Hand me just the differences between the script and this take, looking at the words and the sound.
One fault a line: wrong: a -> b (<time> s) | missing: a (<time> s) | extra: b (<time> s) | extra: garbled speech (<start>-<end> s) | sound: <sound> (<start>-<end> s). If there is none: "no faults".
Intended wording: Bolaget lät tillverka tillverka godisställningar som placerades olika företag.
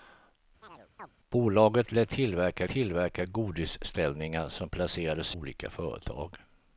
sound: chirp (0.6-1.1 s)